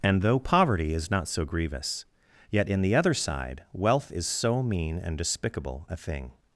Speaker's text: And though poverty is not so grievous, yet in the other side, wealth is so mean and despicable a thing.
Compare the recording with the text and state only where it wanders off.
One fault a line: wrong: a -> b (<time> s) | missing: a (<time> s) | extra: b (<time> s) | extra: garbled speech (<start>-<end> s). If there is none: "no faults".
no faults